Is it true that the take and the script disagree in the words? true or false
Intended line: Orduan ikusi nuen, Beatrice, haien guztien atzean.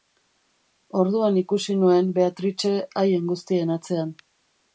false